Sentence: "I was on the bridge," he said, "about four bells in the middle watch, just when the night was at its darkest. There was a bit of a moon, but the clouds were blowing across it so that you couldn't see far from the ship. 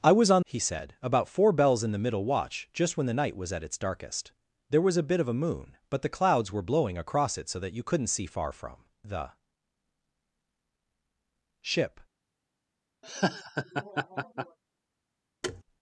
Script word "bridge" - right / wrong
wrong